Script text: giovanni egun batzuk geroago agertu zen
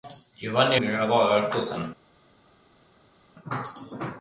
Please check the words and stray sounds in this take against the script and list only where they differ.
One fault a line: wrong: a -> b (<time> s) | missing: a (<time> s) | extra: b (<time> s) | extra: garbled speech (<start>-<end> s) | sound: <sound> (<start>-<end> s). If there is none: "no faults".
missing: egun batzuk (0.8 s)